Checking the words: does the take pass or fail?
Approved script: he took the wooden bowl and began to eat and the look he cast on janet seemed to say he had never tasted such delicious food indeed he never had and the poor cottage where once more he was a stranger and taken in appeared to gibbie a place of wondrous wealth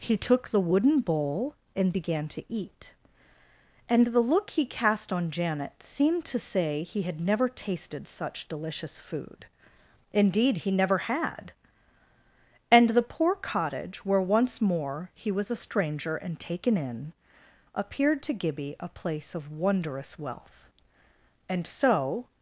fail